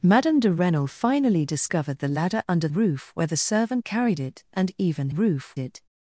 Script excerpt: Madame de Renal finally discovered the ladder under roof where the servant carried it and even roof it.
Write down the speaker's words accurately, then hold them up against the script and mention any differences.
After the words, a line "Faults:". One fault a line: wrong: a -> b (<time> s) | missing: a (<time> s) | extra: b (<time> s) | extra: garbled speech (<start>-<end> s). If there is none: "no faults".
Madame de Renal finally discovered the ladder under roof where the servant carried it and even roof it.
Faults:
no faults